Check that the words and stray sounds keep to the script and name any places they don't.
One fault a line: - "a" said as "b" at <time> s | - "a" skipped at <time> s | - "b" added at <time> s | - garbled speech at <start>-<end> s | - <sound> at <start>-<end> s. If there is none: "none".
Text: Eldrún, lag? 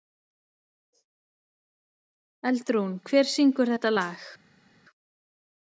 - "hver syngur þetta" added at 3.1 s